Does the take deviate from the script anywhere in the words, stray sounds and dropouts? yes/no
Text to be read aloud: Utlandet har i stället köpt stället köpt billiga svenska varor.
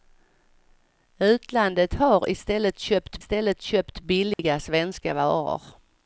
yes